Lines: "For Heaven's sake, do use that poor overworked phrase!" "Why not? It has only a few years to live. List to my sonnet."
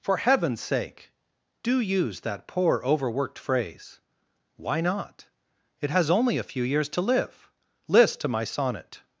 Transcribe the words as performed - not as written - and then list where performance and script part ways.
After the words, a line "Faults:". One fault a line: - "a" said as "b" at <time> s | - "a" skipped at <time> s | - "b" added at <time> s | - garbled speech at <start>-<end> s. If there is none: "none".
"For Heaven's sake, do use that poor overworked phrase!" "Why not? It has only a few years to live. List to my sonnet."
Faults:
none